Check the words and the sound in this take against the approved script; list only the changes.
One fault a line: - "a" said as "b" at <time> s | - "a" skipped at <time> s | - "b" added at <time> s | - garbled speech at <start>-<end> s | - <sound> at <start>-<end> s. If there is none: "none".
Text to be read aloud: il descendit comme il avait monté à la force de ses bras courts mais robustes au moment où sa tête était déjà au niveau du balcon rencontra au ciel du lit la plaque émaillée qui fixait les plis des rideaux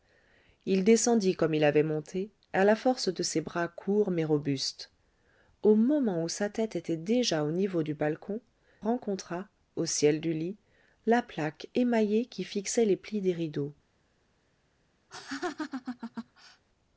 - laugh at 15.1-16.6 s